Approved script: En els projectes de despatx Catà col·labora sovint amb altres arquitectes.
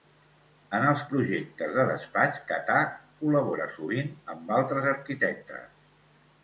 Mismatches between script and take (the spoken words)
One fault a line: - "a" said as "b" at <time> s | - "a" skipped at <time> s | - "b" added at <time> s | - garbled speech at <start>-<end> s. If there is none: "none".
none